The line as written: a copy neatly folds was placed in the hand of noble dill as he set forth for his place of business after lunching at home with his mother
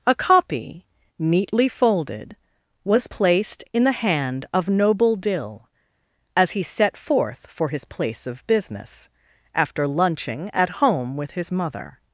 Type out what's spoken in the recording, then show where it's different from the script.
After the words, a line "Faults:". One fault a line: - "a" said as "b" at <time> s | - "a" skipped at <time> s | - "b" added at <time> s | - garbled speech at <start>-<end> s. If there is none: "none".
a copy neatly folded was placed in the hand of noble dill as he set forth for his place of business after lunching at home with his mother
Faults:
- "folds" said as "folded" at 1.7 s